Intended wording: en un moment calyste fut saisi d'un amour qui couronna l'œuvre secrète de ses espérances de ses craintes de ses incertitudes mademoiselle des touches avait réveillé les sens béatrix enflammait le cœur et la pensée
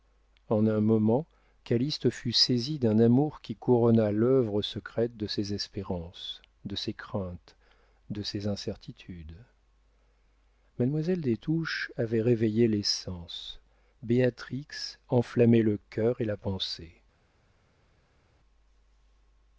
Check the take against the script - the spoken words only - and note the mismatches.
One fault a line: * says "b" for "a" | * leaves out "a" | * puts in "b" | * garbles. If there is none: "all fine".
all fine